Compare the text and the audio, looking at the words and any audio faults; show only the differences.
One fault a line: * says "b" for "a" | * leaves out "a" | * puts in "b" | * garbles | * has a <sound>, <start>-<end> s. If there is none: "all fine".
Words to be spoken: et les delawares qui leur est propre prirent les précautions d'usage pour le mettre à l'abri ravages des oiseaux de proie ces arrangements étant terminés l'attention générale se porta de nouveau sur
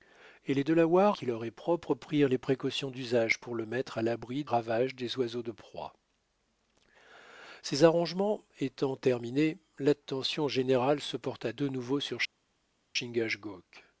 all fine